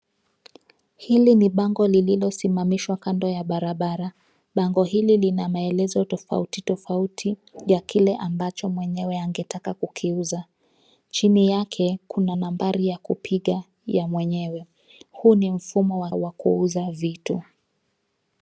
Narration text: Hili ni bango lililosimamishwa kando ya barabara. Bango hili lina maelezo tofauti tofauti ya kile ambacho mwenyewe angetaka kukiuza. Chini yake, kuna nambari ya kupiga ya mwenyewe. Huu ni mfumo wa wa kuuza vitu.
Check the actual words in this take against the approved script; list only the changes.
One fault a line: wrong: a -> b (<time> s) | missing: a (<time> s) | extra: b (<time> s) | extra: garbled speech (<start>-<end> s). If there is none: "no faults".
no faults